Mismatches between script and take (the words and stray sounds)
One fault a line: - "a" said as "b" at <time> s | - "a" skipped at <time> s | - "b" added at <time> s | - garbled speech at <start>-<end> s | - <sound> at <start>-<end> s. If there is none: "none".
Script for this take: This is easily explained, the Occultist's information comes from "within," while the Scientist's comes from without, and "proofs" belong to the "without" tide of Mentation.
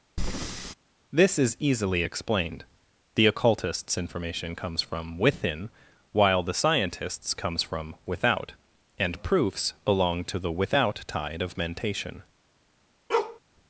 - breath at 0.2-0.7 s
- bark at 13.1-13.4 s